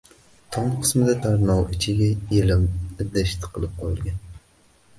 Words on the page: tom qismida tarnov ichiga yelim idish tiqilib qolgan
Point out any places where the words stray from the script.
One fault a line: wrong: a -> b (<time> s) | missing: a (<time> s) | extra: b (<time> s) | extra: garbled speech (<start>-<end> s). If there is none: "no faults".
no faults